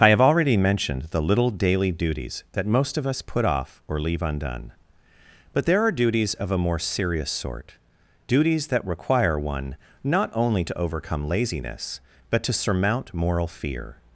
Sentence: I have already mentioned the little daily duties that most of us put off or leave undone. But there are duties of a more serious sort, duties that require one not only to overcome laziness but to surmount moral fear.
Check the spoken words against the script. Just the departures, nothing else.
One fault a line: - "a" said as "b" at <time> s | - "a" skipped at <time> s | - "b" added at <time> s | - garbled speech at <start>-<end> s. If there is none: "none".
none